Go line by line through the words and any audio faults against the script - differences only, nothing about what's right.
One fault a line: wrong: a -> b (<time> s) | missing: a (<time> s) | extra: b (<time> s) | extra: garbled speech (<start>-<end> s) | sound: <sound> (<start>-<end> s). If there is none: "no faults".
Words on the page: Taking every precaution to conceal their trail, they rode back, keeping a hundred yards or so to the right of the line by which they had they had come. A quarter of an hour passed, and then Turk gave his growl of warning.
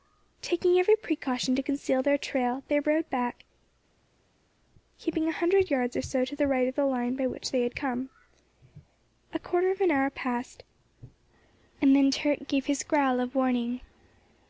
missing: they had (7.8 s)